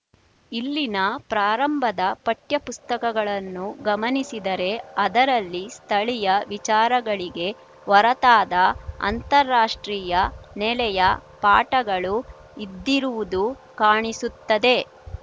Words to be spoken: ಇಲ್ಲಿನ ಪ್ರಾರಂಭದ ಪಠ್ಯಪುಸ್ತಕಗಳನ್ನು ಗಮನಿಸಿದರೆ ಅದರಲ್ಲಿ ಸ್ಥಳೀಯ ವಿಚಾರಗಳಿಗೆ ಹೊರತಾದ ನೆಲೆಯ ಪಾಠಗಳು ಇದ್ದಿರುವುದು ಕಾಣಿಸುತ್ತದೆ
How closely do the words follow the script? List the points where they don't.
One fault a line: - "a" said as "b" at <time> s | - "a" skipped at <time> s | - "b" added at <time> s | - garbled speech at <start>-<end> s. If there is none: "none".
- "ಅಂತಾರಾಷ್ಟ್ರೀಯ" added at 9.0 s